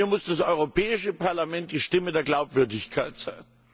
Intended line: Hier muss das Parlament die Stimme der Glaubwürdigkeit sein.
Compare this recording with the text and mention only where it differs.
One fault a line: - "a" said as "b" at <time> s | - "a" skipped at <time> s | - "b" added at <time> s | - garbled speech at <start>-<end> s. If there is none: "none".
- "Europäische" added at 0.4 s